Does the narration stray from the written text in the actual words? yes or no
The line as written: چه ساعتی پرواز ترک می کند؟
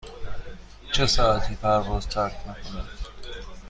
no